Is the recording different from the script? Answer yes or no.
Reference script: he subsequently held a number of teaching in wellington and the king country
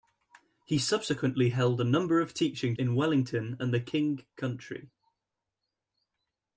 no